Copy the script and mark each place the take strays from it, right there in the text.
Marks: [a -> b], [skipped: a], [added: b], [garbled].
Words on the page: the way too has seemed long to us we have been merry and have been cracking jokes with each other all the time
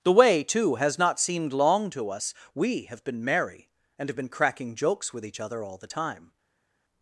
the way too has [added: not] seemed long to us we have been merry and have been cracking jokes with each other all the time